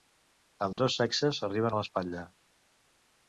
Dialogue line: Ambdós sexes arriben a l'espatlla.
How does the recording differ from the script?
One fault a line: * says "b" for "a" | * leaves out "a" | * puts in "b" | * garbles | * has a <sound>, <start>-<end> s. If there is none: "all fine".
* has a dropout, 0.7-0.8 s